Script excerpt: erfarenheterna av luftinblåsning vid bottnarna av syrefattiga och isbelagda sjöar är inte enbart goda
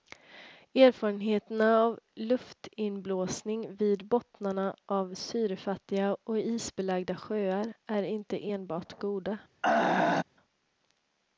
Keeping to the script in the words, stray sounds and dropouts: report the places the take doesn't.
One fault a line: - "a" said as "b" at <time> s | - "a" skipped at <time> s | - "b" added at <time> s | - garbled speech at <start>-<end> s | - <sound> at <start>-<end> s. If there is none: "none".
- throat clearing at 9.6-10.2 s